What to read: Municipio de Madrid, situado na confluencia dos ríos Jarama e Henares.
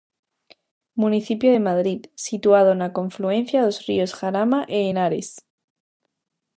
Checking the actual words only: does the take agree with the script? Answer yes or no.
yes